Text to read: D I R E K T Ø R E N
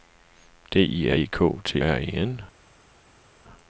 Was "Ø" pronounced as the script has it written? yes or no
no